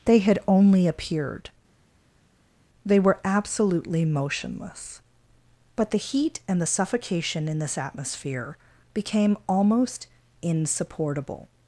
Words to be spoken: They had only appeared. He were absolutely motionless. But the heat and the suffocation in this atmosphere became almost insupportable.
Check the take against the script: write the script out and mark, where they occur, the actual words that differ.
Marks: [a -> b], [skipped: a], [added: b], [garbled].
They had only appeared. [He -> They] were absolutely motionless. But the heat and the suffocation in this atmosphere became almost insupportable.